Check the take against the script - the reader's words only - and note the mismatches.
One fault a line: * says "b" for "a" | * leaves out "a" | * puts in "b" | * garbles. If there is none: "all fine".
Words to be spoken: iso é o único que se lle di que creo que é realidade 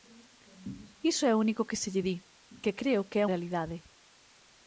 all fine